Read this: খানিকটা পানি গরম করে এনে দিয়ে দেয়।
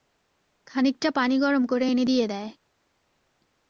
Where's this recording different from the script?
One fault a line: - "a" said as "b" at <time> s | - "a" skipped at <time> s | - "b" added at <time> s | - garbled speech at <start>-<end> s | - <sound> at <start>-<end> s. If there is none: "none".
none